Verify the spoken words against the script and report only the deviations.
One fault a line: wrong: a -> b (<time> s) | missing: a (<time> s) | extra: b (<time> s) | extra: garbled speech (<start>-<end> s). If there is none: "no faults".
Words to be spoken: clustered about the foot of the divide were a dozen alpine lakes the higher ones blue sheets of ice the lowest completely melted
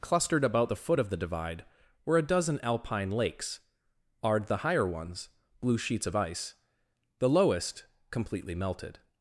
extra: ard (4.2 s)